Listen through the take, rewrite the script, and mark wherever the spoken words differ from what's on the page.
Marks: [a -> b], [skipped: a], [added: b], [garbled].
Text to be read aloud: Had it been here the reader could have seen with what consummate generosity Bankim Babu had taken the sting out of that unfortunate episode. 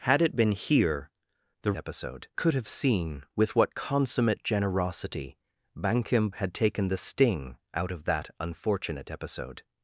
Had it been here the [reader -> episode] could have seen with what consummate generosity Bankim [skipped: Babu] had taken the sting out of that unfortunate episode.